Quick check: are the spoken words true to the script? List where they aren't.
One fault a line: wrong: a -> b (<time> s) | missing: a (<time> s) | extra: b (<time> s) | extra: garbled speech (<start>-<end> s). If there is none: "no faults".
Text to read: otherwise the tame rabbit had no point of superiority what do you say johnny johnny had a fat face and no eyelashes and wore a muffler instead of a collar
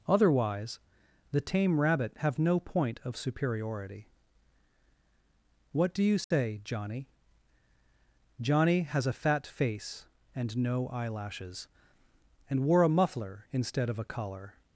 wrong: had -> have (2.2 s)
wrong: had -> has (8.8 s)